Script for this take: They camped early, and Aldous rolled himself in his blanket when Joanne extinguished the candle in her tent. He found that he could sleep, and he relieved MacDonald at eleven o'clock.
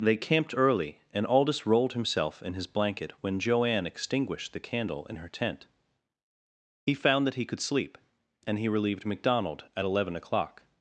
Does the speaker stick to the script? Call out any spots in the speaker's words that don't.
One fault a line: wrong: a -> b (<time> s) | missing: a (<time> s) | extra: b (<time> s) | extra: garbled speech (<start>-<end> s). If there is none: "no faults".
no faults